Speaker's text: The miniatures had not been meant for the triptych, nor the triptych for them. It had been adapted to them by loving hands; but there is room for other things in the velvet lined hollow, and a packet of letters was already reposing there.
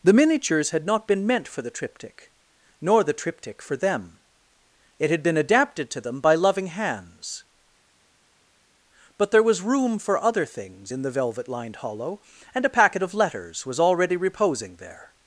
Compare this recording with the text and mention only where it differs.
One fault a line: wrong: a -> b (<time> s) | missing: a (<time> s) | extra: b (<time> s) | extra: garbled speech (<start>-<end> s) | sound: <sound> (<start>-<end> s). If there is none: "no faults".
wrong: is -> was (9.4 s)